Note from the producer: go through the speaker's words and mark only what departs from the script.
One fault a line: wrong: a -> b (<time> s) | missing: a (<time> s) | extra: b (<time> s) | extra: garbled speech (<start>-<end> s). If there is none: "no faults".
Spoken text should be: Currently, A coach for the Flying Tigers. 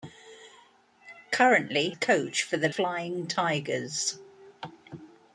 no faults